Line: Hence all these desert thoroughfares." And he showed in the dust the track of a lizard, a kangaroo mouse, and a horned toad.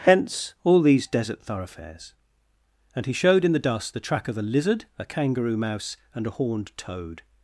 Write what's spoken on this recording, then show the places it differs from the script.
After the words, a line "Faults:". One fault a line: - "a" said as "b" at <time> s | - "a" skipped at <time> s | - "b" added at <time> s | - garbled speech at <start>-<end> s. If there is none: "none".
Hence all these desert thoroughfares." And he showed in the dust the track of a lizard, a kangaroo mouse, and a horned toad.
Faults:
none